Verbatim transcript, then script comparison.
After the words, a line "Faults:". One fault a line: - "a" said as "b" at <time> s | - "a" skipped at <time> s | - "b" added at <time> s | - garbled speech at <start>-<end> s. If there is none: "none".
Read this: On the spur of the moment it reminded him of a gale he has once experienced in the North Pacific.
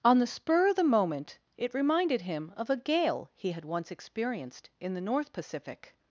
On the spur of the moment it reminded him of a gale he had once experienced in the North Pacific.
Faults:
- "has" said as "had" at 3.5 s